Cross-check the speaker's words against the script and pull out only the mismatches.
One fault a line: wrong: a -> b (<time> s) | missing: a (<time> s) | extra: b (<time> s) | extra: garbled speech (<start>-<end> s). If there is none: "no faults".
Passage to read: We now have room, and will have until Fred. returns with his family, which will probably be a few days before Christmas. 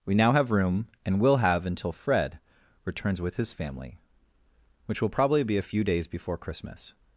no faults